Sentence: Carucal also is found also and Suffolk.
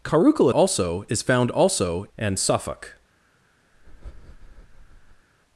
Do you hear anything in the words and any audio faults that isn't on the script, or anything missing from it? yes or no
yes